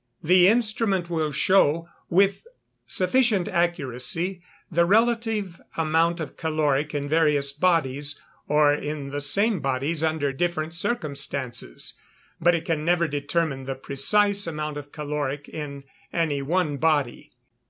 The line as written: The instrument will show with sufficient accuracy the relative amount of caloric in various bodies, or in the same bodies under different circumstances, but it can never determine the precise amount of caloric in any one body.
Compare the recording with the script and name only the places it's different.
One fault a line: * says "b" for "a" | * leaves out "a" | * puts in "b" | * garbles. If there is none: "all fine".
all fine